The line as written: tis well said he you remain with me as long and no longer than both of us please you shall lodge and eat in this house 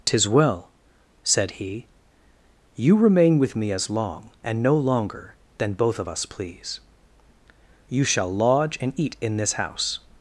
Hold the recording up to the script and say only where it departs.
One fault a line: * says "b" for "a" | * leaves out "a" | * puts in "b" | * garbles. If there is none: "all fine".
all fine